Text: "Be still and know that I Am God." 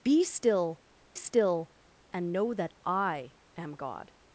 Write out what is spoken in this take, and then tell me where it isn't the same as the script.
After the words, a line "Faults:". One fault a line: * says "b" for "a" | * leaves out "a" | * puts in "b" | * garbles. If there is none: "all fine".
"Be still still and know that I Am God."
Faults:
* puts in "still"